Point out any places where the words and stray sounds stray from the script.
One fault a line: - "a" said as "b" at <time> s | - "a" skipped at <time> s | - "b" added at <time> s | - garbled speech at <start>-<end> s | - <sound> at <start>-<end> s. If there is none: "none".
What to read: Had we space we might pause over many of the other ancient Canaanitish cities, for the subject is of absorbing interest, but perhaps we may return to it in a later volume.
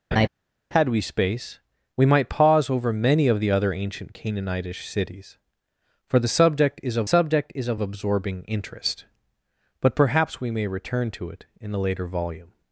- laugh at 0.1-0.3 s
- "subject is of" added at 7.1 s